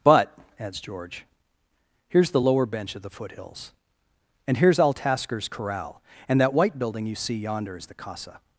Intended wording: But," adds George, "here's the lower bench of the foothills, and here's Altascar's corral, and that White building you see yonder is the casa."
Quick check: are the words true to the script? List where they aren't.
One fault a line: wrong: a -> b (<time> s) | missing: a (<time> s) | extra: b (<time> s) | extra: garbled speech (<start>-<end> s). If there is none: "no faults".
no faults